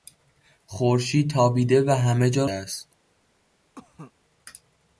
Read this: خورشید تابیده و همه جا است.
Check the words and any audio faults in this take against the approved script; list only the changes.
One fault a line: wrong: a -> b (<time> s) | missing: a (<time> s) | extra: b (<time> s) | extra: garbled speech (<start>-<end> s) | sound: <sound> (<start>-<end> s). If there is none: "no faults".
sound: cough (3.7-4.1 s)